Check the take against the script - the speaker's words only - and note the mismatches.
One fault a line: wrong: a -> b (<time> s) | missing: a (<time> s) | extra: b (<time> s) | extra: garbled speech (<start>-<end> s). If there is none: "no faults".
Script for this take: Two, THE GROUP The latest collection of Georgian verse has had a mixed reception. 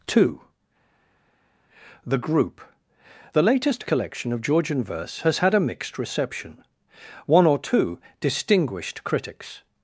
extra: One or two distinguished critics (7.3 s)